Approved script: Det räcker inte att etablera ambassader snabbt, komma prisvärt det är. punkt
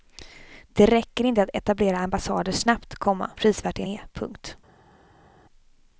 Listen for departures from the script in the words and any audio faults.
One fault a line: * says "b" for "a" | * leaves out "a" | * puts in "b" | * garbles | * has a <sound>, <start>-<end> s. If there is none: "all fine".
all fine